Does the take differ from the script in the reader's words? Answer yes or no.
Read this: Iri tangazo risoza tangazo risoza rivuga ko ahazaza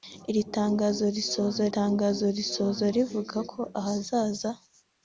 no